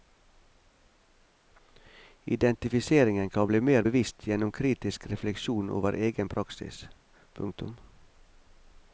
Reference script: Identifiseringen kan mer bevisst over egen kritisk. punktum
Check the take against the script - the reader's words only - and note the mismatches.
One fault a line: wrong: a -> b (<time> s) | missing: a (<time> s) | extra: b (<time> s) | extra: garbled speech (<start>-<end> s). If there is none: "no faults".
extra: bli (3.5 s)
extra: gjennom kritisk refleksjon (4.3 s)
wrong: kritisk -> praksis (6.3 s)